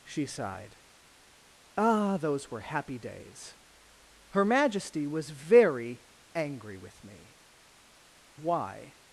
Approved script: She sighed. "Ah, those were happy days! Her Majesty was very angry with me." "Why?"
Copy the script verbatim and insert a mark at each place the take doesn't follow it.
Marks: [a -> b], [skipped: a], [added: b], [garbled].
She sighed. "Ah, those were happy days! Her Majesty was very angry with me." "Why?"